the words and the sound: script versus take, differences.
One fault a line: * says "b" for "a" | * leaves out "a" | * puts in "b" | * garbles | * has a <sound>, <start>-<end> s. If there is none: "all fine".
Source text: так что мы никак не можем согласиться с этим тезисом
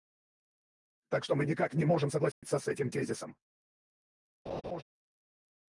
* has a dropout, 2.3-2.4 s
* has a laugh, 4.5-4.8 s